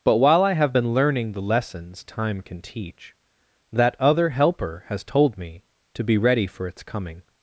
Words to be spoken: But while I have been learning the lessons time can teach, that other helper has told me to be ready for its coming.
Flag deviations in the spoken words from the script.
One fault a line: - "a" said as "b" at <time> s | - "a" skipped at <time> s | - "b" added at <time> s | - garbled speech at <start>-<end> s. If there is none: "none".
none